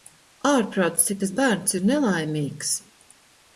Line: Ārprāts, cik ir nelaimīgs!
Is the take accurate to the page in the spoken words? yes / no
no